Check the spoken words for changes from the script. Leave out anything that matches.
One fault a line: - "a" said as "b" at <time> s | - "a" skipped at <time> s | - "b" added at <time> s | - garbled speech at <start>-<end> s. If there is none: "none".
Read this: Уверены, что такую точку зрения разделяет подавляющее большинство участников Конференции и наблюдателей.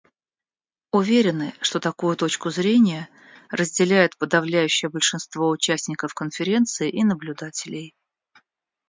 none